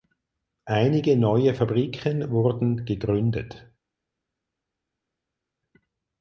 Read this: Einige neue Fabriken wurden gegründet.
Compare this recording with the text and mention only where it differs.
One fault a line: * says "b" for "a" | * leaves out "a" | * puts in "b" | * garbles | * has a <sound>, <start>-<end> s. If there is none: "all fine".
all fine